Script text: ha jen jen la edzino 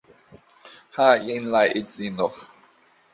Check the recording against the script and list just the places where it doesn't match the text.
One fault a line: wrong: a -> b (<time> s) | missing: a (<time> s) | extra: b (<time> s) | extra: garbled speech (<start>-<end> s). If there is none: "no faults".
missing: jen (1.5 s)